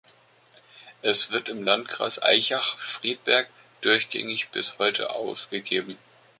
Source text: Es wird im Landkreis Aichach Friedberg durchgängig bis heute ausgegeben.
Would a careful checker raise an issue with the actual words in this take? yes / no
no